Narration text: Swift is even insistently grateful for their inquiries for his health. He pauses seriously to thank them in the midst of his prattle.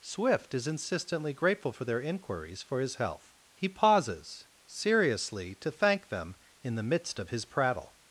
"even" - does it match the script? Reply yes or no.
no